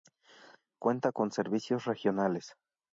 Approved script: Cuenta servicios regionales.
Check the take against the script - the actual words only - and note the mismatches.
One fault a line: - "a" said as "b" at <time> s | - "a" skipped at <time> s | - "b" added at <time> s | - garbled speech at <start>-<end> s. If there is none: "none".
- "con" added at 1.1 s